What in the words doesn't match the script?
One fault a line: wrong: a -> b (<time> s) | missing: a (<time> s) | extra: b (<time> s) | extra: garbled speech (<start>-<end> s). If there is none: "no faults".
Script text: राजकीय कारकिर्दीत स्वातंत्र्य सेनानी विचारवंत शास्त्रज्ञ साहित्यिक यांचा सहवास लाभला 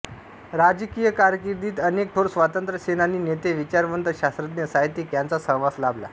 extra: अनेक थोर (1.8 s)
extra: नेते (3.2 s)